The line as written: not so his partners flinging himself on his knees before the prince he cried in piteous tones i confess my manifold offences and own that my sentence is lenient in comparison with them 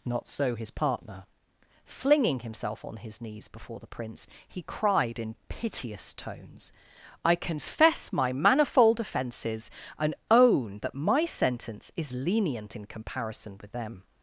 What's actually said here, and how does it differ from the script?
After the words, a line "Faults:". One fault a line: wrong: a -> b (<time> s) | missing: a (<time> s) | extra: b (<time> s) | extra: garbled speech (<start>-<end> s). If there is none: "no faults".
not so his partner flinging himself on his knees before the prince he cried in piteous tones i confess my manifold offences and own that my sentence is lenient in comparison with them
Faults:
wrong: partners -> partner (0.7 s)